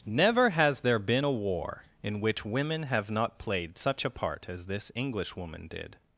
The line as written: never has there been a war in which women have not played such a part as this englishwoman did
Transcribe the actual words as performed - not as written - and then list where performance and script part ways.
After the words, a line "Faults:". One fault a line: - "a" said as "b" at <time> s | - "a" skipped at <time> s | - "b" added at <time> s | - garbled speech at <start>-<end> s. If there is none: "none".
never has there been a war in which women have not played such a part as this englishwoman did
Faults:
none